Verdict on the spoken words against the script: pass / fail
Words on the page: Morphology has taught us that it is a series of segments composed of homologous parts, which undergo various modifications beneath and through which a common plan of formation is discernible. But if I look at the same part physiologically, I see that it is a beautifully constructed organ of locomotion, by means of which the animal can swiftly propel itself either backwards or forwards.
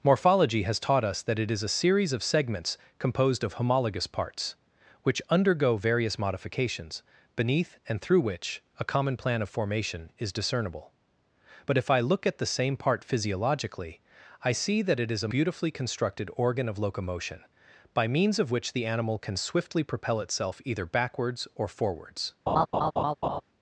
pass